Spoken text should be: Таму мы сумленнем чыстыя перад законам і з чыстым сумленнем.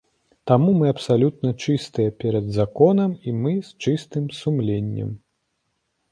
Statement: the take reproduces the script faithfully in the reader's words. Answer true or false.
false